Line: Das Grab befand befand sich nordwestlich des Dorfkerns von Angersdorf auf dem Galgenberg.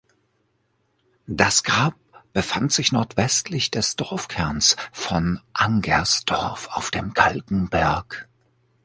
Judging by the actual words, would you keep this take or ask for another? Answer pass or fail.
fail